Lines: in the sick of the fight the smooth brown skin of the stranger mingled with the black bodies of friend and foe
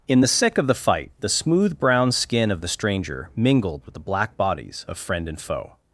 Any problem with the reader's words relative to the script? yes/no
no